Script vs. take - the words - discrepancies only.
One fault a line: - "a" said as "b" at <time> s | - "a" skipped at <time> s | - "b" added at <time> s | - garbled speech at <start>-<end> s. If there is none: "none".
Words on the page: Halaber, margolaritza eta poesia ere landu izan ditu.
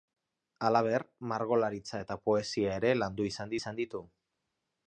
- "izan" added at 3.6 s